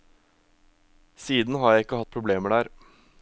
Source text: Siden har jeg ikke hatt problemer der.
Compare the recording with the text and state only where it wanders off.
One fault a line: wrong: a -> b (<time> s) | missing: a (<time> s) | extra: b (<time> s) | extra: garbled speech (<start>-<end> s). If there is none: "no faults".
no faults